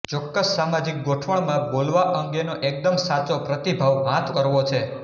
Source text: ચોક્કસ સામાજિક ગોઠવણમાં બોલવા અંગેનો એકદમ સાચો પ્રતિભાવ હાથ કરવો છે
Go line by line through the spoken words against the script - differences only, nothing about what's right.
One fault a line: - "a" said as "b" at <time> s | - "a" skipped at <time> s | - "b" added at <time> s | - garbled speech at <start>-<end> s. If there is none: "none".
none